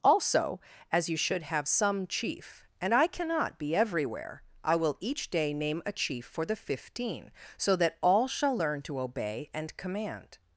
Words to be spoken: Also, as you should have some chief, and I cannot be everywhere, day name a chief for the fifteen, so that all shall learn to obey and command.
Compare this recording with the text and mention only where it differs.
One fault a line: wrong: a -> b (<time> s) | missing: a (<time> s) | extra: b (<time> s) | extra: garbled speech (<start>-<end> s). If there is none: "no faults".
extra: I will each (4.6 s)